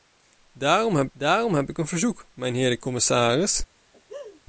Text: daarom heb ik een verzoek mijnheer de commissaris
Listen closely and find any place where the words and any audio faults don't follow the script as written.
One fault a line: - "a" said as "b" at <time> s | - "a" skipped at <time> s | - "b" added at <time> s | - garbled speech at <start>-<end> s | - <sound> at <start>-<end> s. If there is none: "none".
- "daarom heb" added at 1.1 s
- laugh at 3.9-4.4 s